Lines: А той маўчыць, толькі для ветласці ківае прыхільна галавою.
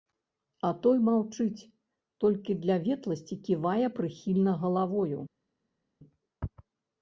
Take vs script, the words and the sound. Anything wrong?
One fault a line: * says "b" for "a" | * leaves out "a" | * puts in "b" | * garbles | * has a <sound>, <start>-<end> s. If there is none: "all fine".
all fine